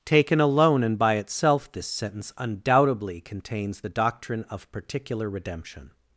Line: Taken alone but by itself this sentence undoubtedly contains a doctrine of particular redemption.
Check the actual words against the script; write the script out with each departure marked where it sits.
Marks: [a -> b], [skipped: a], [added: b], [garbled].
Taken alone [but -> and] by itself this sentence undoubtedly contains [a -> the] doctrine of particular redemption.